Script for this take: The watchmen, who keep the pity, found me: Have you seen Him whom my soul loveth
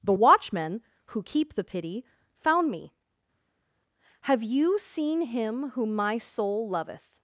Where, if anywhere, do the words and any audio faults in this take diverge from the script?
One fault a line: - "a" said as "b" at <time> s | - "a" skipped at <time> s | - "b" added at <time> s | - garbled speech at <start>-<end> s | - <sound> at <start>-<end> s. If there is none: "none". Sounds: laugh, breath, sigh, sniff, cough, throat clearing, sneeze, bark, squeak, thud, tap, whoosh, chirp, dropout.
none